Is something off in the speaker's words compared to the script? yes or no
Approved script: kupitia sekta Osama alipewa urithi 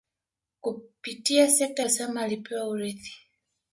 no